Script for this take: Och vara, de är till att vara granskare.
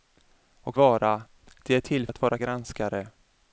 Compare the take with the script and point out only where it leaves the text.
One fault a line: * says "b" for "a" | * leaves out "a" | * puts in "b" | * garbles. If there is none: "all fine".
all fine